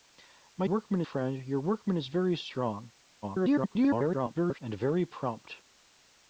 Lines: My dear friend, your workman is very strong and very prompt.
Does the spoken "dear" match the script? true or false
false